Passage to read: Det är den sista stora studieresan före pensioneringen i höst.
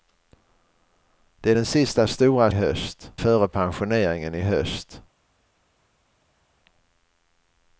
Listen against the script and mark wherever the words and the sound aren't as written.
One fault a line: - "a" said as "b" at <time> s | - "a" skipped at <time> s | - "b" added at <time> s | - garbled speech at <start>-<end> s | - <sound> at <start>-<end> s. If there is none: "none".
- "studieresan" said as "höst" at 2.5 s